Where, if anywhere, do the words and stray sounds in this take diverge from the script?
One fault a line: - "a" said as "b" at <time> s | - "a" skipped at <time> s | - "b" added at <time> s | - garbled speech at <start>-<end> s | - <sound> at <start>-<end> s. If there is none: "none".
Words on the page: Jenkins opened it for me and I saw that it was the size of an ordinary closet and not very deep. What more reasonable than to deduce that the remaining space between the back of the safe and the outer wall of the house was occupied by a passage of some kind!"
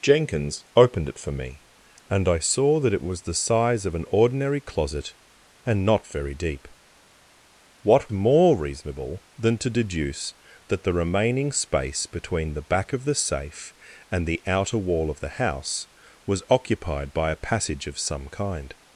none